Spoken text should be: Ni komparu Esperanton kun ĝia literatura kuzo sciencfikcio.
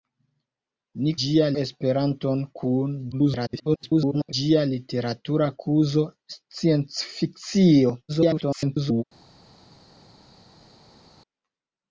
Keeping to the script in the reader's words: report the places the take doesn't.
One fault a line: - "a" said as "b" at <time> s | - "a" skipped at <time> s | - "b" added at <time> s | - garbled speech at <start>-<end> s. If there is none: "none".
- "komparu" said as "ĝia" at 1.3 s
- garbled speech at 3.1-4.3 s
- garbled speech at 8.1-9.0 s